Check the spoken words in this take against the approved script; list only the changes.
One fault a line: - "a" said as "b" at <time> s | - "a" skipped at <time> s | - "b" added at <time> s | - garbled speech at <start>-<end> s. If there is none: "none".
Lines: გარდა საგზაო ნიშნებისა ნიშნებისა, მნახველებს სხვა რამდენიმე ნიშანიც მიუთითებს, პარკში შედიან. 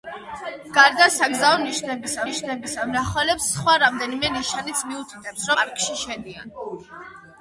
none